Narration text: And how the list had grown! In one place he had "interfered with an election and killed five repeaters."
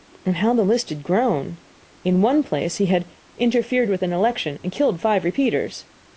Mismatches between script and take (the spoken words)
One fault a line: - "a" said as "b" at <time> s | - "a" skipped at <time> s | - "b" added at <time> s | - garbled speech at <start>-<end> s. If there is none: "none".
none